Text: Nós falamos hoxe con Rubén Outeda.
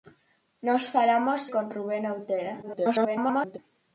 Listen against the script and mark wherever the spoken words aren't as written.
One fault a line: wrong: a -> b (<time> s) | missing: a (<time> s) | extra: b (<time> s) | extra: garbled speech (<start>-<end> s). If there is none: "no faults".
missing: hoxe (1.4 s)
extra: garbled speech (2.6-3.6 s)